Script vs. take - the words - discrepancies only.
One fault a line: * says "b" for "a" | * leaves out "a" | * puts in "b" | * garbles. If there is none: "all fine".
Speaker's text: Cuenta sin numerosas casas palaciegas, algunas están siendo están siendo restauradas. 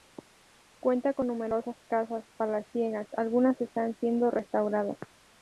* says "con" for "sin"
* leaves out "están siendo"